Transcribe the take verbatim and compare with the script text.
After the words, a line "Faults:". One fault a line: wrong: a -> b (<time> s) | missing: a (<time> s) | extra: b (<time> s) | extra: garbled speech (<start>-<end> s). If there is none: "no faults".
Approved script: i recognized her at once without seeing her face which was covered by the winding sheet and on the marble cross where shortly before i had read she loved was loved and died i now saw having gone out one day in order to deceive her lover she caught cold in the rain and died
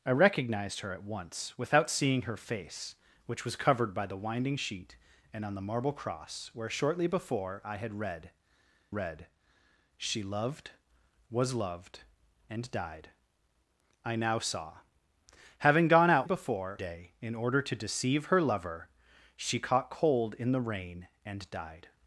i recognized her at once without seeing her face which was covered by the winding sheet and on the marble cross where shortly before i had read read she loved was loved and died i now saw having gone out before day in order to deceive her lover she caught cold in the rain and died
Faults:
extra: read (8.9 s)
wrong: one -> before (16.2 s)